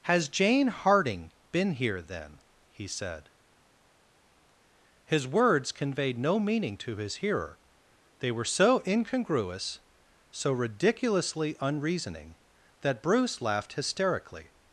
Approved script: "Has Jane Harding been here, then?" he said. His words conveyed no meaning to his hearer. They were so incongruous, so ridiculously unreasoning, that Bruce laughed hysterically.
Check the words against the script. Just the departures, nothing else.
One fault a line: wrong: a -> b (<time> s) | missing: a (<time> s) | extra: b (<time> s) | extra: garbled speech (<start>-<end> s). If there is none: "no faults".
no faults